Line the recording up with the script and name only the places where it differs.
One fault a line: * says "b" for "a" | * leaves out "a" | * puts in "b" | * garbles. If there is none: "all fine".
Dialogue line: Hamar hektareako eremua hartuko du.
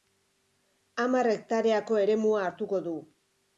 all fine